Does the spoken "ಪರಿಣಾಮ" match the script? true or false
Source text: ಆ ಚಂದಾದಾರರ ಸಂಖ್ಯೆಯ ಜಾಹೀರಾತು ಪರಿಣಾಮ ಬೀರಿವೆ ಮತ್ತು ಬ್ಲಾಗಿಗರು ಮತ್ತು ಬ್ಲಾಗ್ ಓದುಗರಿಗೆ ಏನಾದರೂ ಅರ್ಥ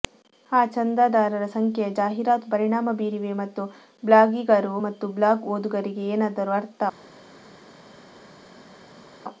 true